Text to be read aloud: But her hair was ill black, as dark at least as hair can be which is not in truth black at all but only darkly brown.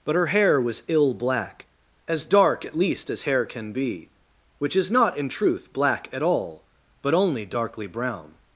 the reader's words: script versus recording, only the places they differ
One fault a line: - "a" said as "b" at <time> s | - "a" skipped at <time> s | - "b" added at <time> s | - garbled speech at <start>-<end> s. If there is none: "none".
none